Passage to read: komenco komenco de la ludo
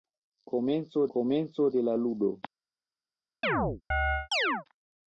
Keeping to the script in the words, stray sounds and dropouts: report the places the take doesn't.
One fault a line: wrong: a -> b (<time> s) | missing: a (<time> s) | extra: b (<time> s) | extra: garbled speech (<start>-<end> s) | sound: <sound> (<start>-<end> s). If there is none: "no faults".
sound: chirp (3.4-4.7 s)